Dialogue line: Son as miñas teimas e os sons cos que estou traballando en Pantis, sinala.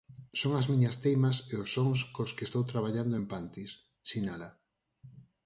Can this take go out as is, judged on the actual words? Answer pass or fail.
pass